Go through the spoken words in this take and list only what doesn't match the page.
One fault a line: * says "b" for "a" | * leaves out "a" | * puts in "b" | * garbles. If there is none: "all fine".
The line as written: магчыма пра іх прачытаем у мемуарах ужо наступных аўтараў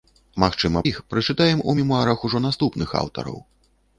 * leaves out "пра"